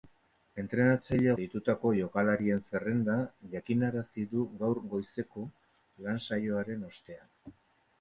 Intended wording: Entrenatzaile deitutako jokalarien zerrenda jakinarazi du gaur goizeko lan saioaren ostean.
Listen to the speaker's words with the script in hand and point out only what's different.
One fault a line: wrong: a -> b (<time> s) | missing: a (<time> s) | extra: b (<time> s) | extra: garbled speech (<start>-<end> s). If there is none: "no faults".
no faults